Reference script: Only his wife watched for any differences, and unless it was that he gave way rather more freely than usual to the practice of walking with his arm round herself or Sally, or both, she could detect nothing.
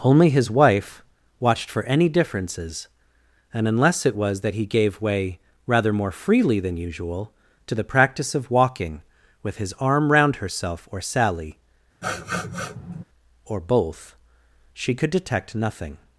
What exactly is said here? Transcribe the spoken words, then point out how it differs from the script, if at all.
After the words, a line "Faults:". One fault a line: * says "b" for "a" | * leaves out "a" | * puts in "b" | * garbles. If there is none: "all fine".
Only his wife watched for any differences, and unless it was that he gave way rather more freely than usual to the practice of walking with his arm round herself or Sally, or both, she could detect nothing.
Faults:
all fine